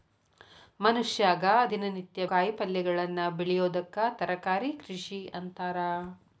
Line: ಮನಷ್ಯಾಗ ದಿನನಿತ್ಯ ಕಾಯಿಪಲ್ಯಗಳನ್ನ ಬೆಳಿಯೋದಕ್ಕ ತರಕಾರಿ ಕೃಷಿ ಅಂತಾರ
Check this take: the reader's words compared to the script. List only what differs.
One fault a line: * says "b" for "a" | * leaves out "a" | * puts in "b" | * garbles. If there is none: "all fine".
all fine